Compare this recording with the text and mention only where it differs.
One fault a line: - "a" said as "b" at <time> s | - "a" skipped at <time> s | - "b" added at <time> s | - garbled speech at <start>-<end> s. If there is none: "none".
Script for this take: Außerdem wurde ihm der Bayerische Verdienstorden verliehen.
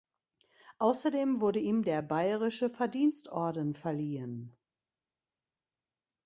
none